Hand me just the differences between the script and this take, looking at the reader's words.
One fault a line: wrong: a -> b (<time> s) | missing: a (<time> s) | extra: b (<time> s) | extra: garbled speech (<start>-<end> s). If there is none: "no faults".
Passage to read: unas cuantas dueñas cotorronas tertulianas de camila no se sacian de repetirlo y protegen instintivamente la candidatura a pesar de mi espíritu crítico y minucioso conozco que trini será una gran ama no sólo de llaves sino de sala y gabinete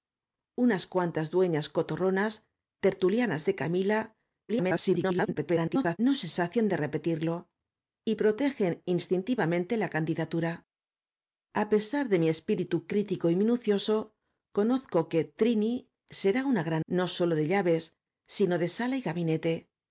extra: garbled speech (4.5-6.0 s)
missing: ama (16.8 s)